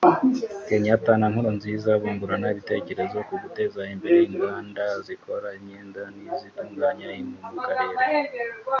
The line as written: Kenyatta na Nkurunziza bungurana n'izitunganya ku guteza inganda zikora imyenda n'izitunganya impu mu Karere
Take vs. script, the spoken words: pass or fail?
fail